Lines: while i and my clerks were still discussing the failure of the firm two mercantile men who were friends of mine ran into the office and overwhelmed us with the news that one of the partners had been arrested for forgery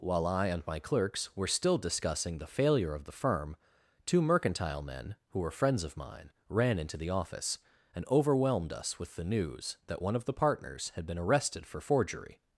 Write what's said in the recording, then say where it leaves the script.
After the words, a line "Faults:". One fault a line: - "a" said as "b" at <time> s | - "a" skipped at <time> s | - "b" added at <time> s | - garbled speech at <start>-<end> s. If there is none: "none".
while i and my clerks were still discussing the failure of the firm two mercantile men who were friends of mine ran into the office and overwhelmed us with the news that one of the partners had been arrested for forgery
Faults:
none